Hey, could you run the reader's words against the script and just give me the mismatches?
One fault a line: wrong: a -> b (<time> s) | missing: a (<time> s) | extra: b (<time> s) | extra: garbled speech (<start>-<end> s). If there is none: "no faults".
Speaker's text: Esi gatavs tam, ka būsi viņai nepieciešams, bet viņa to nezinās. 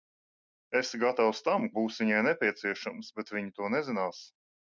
missing: ka (1.7 s)